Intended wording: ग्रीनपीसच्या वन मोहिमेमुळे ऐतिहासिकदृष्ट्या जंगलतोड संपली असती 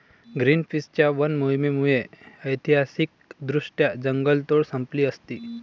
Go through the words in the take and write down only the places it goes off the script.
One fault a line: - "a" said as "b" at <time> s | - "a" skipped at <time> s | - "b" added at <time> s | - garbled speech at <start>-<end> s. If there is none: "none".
none